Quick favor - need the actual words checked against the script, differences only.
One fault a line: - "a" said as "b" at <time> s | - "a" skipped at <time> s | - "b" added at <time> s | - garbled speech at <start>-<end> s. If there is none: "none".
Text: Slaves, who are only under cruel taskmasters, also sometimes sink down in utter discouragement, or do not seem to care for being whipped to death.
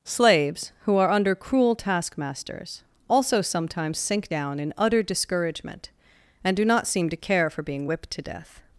- "only" skipped at 1.1 s
- "or" said as "and" at 6.4 s